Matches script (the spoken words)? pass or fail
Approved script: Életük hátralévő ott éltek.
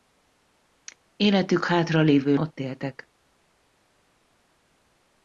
pass